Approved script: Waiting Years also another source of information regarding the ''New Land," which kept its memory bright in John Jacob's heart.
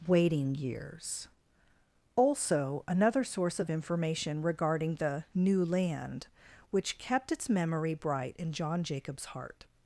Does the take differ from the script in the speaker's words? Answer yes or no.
no